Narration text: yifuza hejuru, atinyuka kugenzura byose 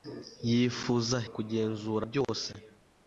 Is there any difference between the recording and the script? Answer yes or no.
yes